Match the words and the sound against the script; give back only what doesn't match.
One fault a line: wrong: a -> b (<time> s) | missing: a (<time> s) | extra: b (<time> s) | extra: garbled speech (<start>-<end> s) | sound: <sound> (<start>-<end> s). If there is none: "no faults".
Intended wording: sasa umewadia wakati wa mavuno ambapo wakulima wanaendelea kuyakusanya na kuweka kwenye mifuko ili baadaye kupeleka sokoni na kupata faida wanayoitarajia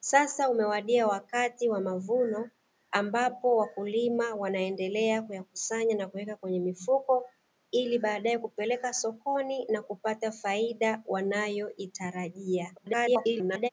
extra: garbled speech (12.8-13.7 s)